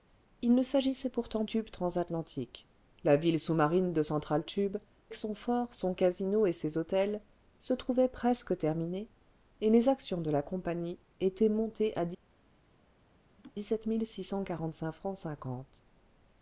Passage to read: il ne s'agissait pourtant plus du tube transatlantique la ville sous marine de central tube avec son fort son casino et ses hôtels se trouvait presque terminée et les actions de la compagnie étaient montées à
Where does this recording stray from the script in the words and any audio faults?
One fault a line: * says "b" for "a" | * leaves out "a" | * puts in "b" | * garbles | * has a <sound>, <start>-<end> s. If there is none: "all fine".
* leaves out "plus du"
* leaves out "avec"
* has a laugh, 13.4-13.5 s